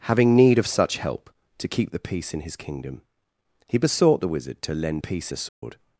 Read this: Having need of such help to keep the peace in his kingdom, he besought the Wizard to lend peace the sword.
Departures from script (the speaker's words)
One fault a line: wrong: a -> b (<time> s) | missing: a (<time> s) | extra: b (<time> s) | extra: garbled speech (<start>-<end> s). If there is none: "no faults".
no faults